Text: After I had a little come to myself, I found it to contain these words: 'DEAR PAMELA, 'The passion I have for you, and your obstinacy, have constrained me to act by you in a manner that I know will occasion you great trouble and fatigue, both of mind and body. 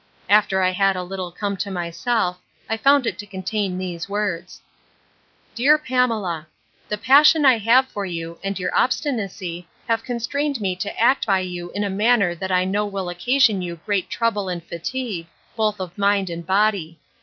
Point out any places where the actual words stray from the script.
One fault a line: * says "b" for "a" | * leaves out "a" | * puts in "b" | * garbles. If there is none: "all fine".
all fine